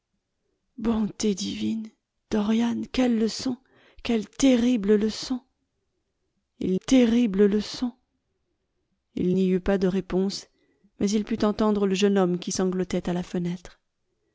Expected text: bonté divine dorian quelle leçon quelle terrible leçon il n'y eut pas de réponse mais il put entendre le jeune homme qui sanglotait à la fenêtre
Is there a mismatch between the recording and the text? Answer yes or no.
yes